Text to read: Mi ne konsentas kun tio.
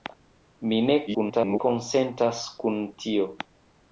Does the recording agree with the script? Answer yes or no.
no